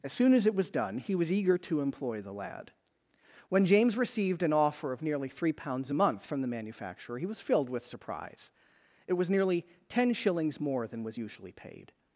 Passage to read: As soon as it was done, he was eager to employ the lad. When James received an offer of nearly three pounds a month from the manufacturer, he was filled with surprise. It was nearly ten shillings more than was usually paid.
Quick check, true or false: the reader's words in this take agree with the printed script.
true